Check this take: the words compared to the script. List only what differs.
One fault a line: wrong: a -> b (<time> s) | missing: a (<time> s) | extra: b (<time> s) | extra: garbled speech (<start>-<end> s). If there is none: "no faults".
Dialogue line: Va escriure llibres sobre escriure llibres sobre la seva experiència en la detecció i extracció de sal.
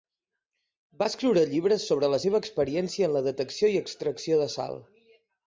missing: escriure llibres sobre (2.1 s)